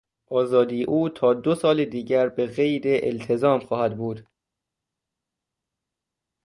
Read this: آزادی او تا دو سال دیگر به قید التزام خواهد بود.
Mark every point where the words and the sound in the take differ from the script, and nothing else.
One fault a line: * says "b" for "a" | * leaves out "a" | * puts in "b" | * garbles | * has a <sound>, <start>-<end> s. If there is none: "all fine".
all fine